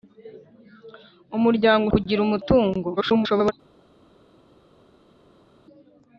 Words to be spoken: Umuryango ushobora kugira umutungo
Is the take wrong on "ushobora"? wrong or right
wrong